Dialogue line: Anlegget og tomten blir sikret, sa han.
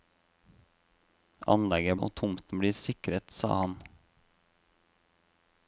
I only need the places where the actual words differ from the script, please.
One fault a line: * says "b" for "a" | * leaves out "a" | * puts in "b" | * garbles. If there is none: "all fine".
all fine